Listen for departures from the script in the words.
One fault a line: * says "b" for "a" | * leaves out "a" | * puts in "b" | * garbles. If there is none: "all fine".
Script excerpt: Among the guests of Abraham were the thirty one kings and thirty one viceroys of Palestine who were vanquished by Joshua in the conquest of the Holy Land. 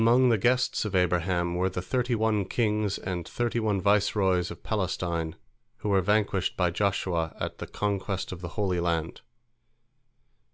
* says "at" for "in"